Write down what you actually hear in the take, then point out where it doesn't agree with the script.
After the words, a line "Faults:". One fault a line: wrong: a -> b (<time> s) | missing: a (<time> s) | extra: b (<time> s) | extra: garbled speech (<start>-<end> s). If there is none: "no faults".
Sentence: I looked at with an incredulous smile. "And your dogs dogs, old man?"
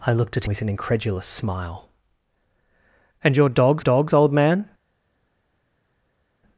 I looked at with an incredulous smile. "And your dogs dogs, old man?"
Faults:
no faults